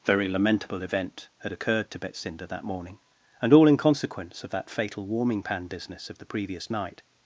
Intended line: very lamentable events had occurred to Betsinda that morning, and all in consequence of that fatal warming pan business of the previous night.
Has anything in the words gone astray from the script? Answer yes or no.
yes